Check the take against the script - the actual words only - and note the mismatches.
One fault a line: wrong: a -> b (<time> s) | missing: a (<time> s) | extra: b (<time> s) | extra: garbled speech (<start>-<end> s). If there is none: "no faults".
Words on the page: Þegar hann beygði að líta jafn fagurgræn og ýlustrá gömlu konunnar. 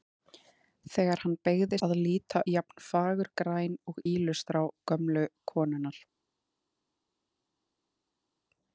no faults